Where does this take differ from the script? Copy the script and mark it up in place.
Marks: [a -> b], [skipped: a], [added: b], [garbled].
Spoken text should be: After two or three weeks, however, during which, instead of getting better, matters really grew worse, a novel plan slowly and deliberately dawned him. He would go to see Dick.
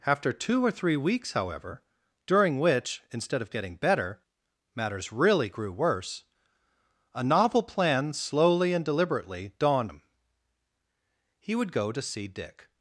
After two or three weeks, however, during which, instead of getting better, matters really grew worse, a novel plan slowly and deliberately dawned him. He would go to see Dick.